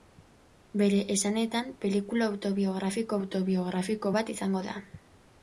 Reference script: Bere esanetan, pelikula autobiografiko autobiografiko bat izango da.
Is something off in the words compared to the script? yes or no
no